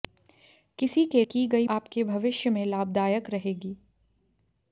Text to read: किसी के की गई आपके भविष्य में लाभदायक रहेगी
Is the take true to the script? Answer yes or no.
yes